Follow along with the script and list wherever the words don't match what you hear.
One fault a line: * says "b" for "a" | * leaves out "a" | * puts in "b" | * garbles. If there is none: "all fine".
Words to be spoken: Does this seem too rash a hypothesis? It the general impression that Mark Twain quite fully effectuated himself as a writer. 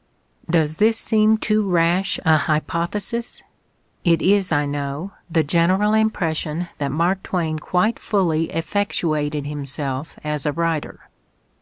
* puts in "is I know"